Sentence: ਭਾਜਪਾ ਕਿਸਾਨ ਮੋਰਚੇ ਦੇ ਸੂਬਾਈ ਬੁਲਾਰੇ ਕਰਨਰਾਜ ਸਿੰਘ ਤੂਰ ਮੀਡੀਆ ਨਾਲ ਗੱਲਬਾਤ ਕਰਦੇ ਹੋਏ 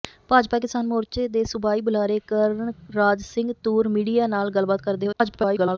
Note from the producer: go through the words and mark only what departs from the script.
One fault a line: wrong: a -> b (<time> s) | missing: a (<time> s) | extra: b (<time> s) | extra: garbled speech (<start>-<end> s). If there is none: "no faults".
extra: garbled speech (5.1-5.8 s)